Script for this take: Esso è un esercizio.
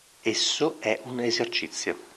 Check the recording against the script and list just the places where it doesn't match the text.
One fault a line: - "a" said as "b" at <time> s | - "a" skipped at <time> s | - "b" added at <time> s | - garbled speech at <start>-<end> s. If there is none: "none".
none